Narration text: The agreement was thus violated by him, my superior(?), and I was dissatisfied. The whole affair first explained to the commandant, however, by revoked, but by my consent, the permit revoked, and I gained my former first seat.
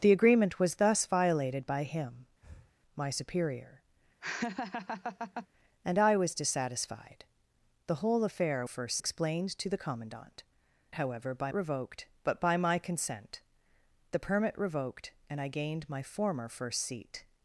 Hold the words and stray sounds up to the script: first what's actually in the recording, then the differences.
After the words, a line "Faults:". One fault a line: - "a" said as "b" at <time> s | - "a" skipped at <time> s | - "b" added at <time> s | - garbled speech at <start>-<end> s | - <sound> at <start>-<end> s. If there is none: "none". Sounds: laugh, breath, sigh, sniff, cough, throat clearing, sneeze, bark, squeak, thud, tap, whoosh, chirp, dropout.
The agreement was thus violated by him, my superior(?), and I was dissatisfied. The whole affair first explained to the commandant, however, by revoked, but by my consent, the permit revoked, and I gained my former first seat.
Faults:
- breath at 2.4-2.7 s
- laugh at 4.2-5.5 s